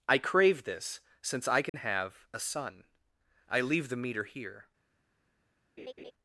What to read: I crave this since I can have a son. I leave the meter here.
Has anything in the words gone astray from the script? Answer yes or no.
no